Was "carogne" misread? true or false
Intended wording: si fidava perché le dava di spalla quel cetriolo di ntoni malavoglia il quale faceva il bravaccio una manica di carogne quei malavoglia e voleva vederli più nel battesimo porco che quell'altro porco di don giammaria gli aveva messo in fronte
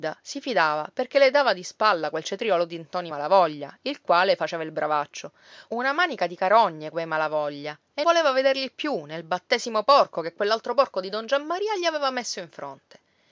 false